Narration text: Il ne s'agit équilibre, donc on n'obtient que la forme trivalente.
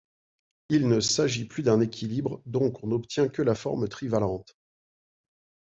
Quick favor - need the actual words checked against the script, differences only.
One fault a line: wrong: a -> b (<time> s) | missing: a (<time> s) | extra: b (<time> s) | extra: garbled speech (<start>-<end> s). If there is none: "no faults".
extra: plus d'un (1.4 s)